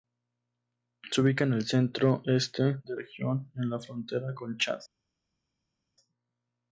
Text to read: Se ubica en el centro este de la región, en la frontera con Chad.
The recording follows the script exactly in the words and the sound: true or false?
false